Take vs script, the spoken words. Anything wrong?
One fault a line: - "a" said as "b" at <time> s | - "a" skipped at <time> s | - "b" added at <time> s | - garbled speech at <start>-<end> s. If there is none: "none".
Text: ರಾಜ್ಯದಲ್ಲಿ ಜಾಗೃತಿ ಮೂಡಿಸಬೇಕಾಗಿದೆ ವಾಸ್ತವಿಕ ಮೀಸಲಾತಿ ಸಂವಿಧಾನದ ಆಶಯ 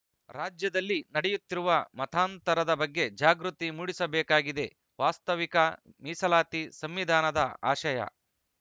- "ನಡೆಯುತ್ತಿರುವ ಮತಾಂತರದ ಬಗ್ಗೆ" added at 1.1 s